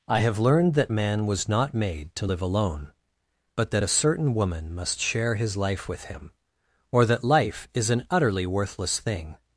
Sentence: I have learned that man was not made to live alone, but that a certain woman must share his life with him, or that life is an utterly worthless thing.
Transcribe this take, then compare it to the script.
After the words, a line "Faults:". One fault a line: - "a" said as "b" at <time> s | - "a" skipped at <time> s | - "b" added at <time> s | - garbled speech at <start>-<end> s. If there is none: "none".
I have learned that man was not made to live alone, but that a certain woman must share his life with him, or that life is an utterly worthless thing.
Faults:
none